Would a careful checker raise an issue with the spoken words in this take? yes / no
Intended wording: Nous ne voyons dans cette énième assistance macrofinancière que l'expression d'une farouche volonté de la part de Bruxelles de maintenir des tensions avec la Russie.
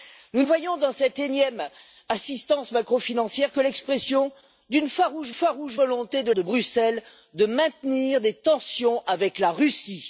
yes